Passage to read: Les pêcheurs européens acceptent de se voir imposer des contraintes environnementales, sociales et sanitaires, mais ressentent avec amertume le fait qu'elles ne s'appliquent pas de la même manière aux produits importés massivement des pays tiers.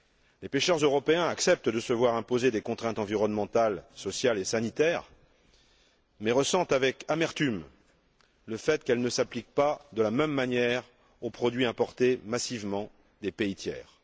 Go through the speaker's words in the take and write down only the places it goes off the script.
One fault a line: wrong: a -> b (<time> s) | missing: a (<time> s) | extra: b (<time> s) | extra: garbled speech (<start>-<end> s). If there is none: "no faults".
no faults